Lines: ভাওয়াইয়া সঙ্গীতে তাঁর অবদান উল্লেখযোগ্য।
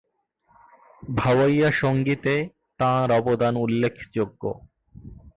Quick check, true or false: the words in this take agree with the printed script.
true